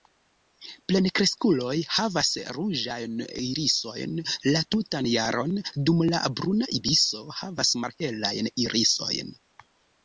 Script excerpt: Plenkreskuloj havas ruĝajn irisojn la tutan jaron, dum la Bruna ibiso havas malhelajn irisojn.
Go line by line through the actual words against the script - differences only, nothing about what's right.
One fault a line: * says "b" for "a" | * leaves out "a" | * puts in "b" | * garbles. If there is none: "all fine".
all fine